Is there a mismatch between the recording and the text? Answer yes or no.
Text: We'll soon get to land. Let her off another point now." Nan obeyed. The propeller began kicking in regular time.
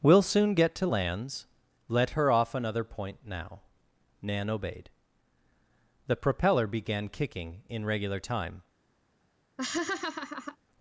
yes